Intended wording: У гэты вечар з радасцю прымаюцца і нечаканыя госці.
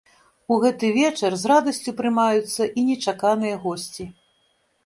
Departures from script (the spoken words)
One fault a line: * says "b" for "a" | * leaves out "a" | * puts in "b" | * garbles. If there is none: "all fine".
all fine